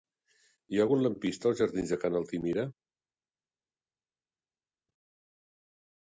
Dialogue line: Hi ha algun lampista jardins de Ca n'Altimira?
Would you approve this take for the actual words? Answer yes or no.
no